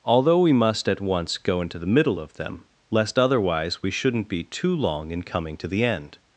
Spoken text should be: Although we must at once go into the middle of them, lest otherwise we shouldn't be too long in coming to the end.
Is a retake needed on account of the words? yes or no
no